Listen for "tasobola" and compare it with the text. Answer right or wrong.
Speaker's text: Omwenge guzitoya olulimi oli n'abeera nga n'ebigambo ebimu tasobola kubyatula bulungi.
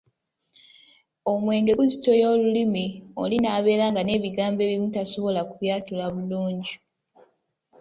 right